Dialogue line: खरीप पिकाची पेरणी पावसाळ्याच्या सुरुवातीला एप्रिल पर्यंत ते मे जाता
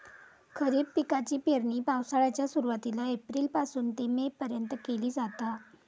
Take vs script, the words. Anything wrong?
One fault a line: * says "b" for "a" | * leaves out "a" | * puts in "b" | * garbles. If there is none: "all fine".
* says "पासून" for "पर्यंत"
* puts in "पर्यंत केली"